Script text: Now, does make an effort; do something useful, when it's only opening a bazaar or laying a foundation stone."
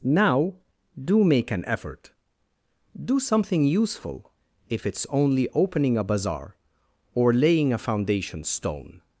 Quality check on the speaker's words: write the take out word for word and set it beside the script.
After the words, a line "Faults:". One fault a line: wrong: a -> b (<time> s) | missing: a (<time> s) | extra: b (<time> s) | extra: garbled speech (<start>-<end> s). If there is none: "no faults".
Now, do make an effort; do something useful, if it's only opening a bazaar or laying a foundation stone."
Faults:
wrong: does -> do (1.0 s)
wrong: when -> if (4.7 s)